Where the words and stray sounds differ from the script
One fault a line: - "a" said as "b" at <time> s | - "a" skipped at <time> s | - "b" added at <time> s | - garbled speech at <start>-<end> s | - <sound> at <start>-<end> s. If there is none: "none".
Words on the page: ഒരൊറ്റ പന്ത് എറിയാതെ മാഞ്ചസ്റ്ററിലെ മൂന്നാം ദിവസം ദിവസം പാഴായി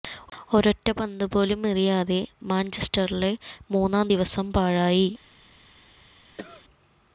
- "പോലും" added at 1.3 s
- "ദിവസം" skipped at 4.5 s
- cough at 6.4-6.6 s